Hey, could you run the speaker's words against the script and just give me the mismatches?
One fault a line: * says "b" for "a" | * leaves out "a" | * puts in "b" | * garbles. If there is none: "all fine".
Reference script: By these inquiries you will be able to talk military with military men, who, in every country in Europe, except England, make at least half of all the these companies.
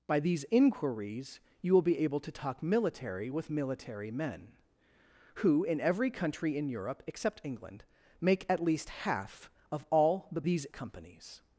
all fine